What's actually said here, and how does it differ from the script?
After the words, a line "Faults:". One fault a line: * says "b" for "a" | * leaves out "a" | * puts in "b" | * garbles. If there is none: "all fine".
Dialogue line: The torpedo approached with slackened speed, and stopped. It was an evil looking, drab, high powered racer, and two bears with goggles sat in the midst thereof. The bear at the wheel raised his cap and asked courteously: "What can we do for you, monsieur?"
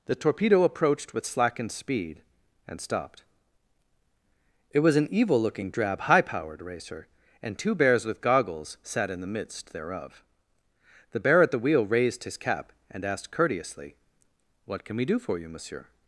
The torpedo approached with slackened speed, and stopped. It was an evil looking, drab, high powered racer, and two bears with goggles sat in the midst thereof. The bear at the wheel raised his cap and asked courteously: "What can we do for you, monsieur?"
Faults:
all fine